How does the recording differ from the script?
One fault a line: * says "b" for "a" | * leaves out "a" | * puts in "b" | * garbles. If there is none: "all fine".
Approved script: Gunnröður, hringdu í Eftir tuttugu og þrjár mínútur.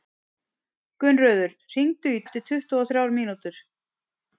all fine